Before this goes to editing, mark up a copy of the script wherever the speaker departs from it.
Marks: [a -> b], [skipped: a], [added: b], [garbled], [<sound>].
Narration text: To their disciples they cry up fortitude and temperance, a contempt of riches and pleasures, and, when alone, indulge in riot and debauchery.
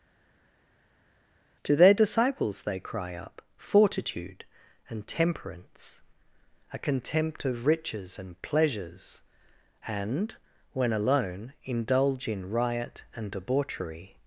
To their disciples they cry up fortitude and temperance, a contempt of riches and pleasures, and, when alone, indulge in riot and debauchery.